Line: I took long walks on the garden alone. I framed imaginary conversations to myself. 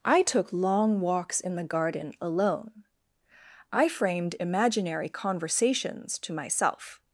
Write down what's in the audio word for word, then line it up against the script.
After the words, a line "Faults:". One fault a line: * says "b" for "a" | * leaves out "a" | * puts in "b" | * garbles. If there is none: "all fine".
I took long walks in the garden alone. I framed imaginary conversations to myself.
Faults:
* says "in" for "on"